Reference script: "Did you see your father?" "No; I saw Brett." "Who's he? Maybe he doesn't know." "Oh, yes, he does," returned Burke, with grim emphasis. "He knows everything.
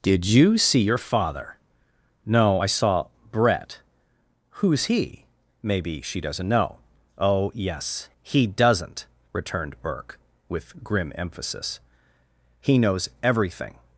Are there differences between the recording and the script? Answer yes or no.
yes